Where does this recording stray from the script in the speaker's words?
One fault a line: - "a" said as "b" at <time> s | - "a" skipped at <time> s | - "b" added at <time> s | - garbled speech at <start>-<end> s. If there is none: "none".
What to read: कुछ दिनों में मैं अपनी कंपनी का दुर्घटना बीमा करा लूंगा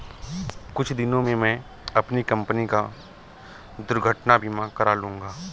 none